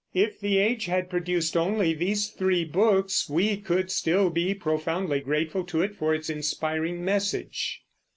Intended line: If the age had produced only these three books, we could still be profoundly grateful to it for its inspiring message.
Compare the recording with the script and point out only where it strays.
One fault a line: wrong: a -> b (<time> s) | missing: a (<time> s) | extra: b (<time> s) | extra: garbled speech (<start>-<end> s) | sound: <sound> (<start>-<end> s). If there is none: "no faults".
no faults